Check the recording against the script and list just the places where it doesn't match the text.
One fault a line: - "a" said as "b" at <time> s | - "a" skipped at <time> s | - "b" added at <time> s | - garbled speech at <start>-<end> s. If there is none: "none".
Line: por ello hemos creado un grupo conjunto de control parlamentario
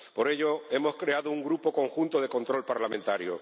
none